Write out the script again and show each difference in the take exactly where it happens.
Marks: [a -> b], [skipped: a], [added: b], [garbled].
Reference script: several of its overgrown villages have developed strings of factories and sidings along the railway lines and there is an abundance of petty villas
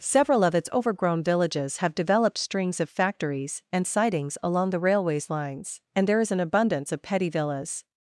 several of its overgrown villages have developed strings of factories and sidings along the [railway -> railways] lines and there is an abundance of petty villas